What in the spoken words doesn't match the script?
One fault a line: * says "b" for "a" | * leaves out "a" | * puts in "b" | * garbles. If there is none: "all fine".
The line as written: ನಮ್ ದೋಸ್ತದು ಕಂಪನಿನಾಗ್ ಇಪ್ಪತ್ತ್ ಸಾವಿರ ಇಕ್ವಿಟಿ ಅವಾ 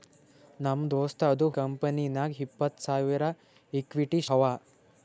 all fine